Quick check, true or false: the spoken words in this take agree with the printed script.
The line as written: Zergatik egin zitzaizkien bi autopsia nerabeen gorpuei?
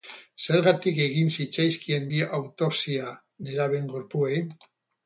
true